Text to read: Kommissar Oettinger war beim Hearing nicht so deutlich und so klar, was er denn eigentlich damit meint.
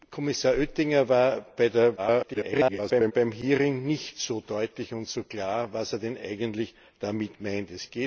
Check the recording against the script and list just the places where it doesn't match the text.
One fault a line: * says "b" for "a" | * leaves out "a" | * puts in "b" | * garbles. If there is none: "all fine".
* garbles